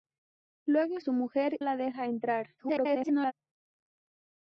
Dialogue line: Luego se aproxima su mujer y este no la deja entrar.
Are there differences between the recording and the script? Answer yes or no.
yes